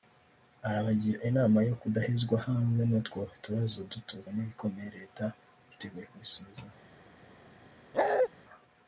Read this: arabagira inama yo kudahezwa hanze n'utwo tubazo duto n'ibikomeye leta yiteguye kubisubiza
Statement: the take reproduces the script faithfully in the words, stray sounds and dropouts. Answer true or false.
false